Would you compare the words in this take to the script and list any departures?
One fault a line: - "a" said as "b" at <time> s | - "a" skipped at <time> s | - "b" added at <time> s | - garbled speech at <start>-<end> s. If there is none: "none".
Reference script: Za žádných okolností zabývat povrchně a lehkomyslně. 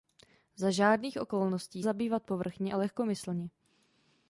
none